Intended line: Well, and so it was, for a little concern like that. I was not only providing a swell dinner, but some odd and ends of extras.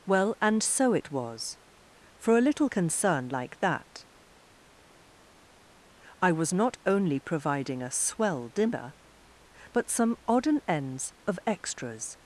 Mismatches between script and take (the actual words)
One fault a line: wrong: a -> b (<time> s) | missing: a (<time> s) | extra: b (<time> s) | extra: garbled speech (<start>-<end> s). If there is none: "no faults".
no faults